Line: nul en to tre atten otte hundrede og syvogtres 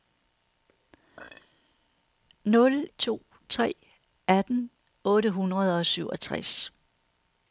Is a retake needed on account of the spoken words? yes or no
yes